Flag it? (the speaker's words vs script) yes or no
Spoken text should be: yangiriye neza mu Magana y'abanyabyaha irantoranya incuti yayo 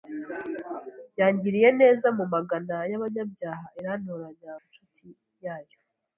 no